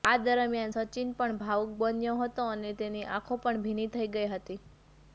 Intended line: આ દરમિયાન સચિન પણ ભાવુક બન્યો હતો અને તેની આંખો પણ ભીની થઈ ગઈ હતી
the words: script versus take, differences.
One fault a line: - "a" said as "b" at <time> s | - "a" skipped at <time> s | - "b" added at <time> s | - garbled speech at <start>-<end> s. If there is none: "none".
none